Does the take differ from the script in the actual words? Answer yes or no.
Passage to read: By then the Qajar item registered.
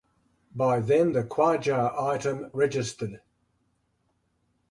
no